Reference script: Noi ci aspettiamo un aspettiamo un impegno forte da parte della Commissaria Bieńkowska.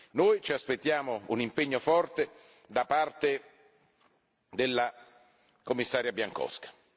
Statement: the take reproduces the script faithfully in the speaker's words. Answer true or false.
false